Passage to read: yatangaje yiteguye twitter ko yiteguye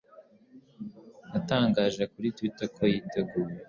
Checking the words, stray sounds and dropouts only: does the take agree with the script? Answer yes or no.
no